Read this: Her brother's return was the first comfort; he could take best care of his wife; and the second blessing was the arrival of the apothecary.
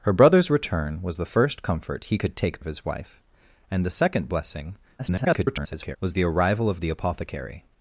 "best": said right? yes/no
no